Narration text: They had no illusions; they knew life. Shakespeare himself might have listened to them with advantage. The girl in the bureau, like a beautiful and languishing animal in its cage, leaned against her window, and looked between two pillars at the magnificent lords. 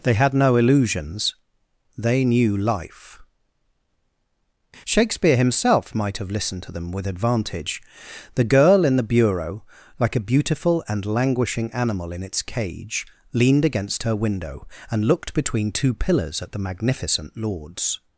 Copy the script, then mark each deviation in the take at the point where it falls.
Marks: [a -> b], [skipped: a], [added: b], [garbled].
They had no illusions; they knew life. Shakespeare himself might have listened to them with advantage. The girl in the bureau, like a beautiful and languishing animal in its cage, leaned against her window, and looked between two pillars at the magnificent lords.